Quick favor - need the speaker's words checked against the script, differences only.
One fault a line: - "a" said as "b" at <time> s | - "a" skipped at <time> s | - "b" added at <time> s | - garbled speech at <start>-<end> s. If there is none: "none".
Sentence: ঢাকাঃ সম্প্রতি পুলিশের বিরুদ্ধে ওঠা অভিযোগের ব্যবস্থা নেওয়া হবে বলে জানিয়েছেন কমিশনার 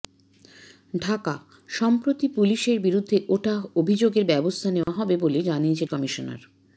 none